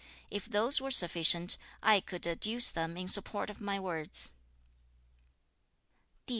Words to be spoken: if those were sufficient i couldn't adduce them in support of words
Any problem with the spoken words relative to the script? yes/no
yes